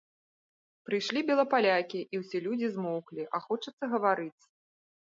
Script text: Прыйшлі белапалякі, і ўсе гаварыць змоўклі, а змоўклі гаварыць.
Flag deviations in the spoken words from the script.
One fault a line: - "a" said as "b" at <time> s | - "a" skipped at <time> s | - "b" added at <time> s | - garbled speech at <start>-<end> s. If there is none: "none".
- "гаварыць" said as "людзі" at 2.5 s
- "змоўклі" said as "хочацца" at 3.5 s